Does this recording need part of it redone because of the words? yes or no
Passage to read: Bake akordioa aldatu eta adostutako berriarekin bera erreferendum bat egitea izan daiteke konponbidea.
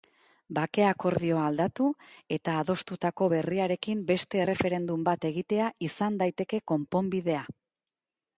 yes